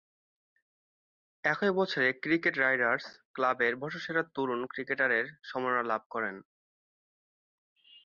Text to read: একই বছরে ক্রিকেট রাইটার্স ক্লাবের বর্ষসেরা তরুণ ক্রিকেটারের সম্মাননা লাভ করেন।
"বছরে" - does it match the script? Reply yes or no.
yes